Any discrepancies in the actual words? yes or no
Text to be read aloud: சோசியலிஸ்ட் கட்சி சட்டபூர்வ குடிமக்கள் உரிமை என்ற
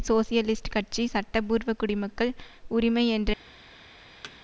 no